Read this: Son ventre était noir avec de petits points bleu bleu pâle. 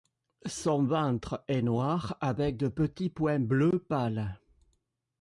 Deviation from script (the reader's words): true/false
true